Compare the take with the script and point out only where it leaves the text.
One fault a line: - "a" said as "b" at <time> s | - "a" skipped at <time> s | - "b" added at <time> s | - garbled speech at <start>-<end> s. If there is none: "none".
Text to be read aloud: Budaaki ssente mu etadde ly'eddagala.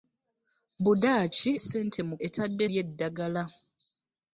none